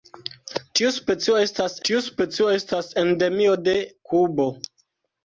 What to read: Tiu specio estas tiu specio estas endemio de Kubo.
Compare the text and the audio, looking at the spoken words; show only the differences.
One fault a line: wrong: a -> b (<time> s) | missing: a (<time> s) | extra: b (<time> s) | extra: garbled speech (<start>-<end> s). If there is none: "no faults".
no faults